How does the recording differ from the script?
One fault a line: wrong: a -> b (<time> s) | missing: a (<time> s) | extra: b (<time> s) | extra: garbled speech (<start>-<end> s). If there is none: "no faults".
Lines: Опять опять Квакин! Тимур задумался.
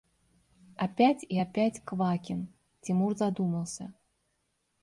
extra: и (1.2 s)